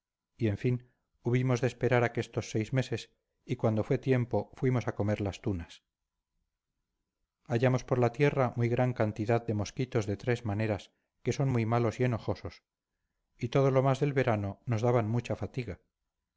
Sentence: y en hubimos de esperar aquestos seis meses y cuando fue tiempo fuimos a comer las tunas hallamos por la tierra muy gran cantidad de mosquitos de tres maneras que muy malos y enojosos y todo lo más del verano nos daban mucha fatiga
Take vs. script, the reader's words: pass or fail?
fail